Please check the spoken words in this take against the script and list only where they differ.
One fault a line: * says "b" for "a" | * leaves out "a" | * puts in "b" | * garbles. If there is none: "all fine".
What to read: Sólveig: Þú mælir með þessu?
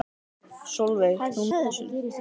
* leaves out "mælir"